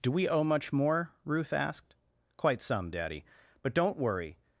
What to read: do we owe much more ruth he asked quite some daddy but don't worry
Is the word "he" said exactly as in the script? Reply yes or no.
no